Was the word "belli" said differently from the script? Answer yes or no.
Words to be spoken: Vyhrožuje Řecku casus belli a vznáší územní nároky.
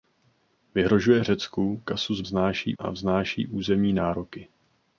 yes